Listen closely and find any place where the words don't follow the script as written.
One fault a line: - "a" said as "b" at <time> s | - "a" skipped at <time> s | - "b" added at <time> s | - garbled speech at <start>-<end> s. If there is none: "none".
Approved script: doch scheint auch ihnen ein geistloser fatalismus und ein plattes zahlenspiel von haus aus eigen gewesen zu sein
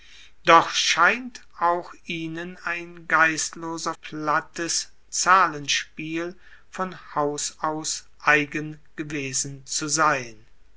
- "fatalismus und ein" skipped at 3.9 s